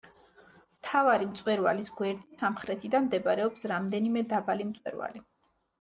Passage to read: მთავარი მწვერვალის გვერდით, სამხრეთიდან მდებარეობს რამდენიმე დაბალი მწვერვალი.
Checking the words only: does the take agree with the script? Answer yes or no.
yes